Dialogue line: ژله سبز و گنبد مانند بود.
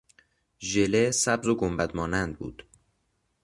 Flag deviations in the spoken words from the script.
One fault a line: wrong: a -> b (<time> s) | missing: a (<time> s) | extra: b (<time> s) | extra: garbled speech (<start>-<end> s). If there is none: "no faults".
no faults